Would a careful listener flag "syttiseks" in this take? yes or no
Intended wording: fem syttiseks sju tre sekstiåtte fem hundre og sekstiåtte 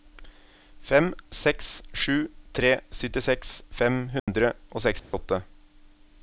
yes